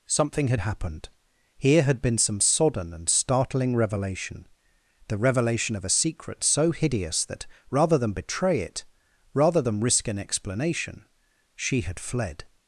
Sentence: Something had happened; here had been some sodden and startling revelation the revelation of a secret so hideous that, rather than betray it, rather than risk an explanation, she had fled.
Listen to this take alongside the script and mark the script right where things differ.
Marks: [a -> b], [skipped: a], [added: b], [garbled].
Something had happened; here had been some sodden and startling revelation the revelation of a secret so hideous that, rather than betray it, rather than risk an explanation, she had fled.